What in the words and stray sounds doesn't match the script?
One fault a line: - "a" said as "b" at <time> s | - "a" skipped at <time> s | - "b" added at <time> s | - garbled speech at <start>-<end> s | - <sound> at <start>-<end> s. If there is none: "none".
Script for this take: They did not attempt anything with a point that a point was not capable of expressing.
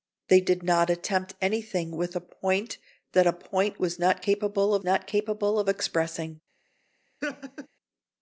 - "not capable of" added at 4.8 s
- laugh at 7.2-7.7 s